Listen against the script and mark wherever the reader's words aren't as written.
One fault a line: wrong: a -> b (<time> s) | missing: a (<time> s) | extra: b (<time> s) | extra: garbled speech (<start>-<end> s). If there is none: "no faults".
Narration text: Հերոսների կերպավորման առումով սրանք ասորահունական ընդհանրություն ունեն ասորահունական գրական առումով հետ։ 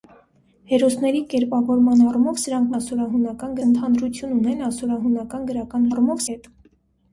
no faults